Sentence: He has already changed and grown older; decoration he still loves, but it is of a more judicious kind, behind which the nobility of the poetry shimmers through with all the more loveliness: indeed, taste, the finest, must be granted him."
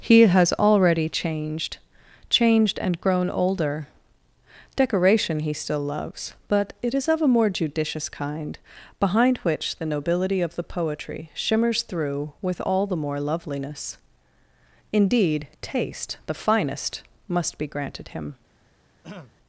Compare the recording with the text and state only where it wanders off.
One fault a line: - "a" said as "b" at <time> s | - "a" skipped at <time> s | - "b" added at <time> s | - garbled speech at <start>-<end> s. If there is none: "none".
- "changed" added at 2.3 s